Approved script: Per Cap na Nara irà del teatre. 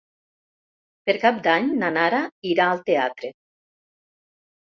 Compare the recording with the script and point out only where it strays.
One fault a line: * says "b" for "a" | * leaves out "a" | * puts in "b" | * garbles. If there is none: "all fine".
* puts in "d'Any"
* says "al" for "del"